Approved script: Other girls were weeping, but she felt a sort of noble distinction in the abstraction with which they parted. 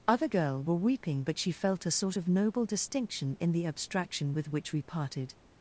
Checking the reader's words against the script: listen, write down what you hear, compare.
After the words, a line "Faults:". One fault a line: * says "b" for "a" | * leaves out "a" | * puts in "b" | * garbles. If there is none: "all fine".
Other girl were weeping, but she felt a sort of noble distinction in the abstraction with which we parted.
Faults:
* says "girl" for "girls"
* says "we" for "they"